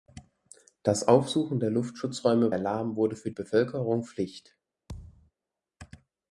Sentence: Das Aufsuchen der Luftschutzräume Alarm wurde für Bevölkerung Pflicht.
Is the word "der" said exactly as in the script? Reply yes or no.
yes